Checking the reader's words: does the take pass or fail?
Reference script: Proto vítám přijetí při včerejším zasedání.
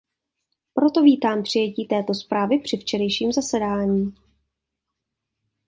fail